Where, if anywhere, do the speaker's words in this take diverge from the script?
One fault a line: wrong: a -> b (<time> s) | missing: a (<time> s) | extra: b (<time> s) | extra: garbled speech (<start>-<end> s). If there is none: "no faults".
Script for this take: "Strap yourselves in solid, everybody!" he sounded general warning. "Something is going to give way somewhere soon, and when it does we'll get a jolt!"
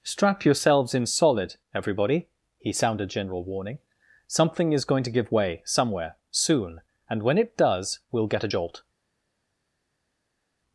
no faults